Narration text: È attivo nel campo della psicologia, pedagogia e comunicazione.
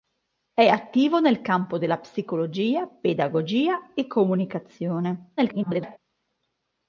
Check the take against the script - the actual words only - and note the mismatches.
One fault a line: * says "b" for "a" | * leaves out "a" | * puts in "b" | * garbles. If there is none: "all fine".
* garbles